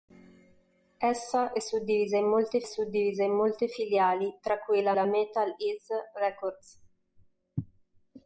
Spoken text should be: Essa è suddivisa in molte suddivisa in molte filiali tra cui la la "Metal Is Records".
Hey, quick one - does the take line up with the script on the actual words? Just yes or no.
yes